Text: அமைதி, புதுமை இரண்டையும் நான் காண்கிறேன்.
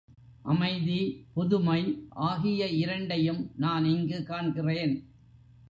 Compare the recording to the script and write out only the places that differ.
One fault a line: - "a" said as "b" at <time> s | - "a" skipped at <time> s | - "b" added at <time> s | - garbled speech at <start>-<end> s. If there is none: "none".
- "ஆகிய" added at 2.1 s
- "இங்கு" added at 3.8 s